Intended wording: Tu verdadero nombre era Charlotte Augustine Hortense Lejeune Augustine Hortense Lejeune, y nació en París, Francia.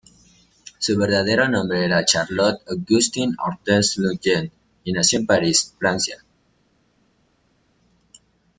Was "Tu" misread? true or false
true